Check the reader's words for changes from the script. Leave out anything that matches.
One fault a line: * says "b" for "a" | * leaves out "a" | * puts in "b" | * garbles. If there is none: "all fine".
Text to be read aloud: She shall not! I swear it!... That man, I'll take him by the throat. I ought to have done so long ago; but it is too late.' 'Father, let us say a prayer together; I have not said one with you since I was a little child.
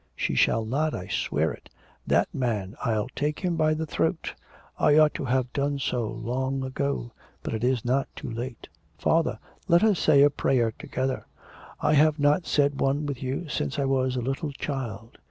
* puts in "not"